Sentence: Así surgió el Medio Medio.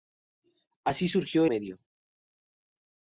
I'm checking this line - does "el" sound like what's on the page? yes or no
no